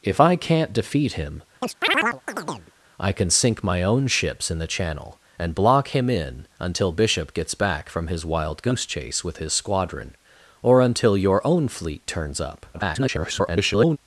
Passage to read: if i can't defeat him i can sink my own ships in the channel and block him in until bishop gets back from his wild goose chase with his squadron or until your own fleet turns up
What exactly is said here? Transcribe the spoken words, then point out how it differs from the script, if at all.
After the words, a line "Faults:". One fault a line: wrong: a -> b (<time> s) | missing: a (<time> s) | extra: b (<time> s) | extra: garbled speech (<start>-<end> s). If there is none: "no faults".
if i can't defeat him i can sink my own ships in the channel and block him in until bishop gets back from his wild goose chase with his squadron or until your own fleet turns up [garbled]
Faults:
extra: garbled speech (12.7-14.0 s)